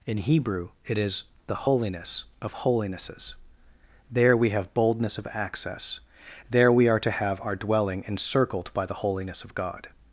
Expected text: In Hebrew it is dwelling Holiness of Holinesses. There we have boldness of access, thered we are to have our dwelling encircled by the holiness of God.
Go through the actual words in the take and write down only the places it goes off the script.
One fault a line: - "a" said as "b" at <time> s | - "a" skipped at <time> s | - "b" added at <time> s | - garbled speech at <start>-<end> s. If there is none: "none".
- "dwelling" said as "the" at 1.4 s
- "thered" said as "there" at 6.5 s